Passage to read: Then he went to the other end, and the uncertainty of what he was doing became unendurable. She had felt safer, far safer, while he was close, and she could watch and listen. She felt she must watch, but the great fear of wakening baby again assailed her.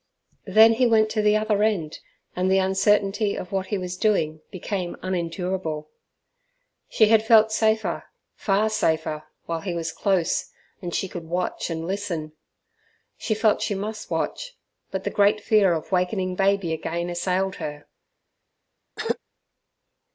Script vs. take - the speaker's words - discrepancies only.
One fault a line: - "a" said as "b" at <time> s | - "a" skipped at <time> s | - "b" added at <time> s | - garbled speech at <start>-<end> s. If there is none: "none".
none